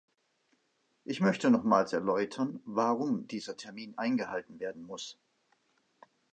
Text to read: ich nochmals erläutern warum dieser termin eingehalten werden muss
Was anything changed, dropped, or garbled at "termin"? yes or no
no